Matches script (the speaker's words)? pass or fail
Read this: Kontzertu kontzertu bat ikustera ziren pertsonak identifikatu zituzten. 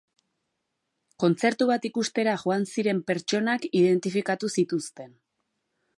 fail